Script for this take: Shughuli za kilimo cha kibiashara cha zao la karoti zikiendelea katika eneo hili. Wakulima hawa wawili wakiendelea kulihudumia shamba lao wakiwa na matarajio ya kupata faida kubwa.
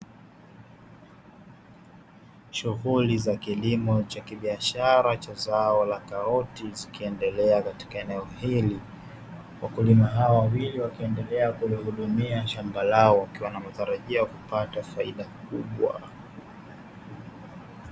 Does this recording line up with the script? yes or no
yes